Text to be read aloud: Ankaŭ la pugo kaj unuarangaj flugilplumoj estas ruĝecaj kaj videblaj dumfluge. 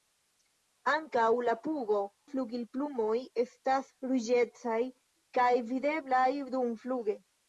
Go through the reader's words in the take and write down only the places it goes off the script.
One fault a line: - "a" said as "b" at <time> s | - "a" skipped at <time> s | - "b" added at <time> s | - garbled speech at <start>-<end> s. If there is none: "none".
- "kaj unuarangaj" skipped at 2.0 s